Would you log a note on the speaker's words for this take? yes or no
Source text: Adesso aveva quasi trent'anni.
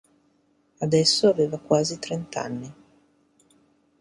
no